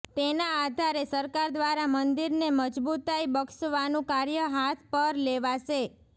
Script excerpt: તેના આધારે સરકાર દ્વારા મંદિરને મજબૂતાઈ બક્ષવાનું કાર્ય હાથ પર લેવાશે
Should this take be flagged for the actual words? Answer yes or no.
no